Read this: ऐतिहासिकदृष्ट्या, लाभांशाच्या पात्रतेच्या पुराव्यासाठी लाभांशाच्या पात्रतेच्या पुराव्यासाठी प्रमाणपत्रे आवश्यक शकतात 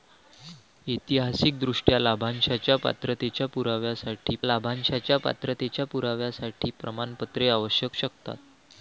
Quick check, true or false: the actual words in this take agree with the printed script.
true